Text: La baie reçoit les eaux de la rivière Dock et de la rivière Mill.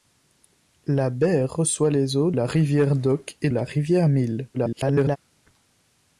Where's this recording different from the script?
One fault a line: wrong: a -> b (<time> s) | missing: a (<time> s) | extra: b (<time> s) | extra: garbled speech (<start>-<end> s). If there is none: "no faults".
missing: de (2.3 s)
missing: de (3.5 s)
extra: garbled speech (4.5-5.2 s)